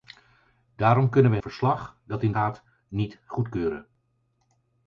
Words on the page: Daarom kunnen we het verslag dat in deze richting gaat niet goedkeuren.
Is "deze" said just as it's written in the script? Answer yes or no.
no